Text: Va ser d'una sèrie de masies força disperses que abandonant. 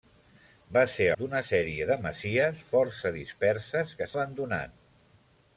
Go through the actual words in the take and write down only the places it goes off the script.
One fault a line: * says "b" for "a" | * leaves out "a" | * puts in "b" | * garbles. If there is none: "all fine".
all fine